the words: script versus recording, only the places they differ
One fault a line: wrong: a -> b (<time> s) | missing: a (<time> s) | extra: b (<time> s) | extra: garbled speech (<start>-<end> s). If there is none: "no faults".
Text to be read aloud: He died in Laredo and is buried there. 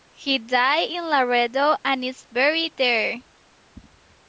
no faults